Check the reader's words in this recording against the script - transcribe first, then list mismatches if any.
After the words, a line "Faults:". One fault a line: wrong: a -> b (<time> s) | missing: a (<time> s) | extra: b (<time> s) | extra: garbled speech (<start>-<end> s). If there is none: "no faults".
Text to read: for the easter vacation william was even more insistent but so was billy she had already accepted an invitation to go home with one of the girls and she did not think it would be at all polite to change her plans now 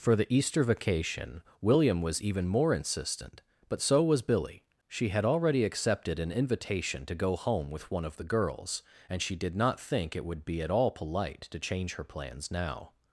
for the easter vacation william was even more insistent but so was billy she had already accepted an invitation to go home with one of the girls and she did not think it would be at all polite to change her plans now
Faults:
no faults